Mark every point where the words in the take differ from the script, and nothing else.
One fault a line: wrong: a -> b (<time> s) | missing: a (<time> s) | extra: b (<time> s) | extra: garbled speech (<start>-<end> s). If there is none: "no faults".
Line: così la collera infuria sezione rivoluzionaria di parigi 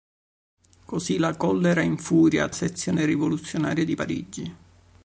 no faults